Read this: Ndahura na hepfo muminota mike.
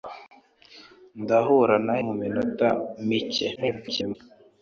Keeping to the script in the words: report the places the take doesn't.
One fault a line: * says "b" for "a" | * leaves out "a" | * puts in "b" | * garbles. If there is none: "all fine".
* leaves out "hepfo"
* garbles